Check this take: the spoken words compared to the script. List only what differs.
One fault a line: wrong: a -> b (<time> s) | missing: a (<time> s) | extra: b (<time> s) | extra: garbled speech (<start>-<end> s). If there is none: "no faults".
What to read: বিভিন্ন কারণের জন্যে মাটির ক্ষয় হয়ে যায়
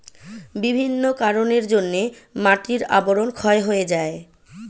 extra: আবরণ (3.0 s)